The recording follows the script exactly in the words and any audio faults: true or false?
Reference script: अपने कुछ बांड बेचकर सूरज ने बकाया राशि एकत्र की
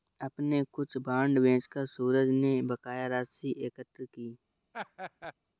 false